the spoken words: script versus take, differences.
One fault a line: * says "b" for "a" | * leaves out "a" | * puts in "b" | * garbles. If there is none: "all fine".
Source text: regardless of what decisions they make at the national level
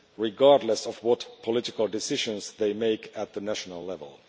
* puts in "political"